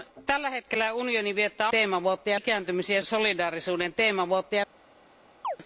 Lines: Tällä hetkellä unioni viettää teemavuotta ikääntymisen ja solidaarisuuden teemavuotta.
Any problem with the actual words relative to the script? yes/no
no